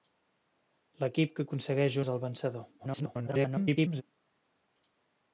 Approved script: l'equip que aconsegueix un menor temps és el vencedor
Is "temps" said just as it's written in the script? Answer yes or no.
no